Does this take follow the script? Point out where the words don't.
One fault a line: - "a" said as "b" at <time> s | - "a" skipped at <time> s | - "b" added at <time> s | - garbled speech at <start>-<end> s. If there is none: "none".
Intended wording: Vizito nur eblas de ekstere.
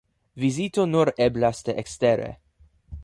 none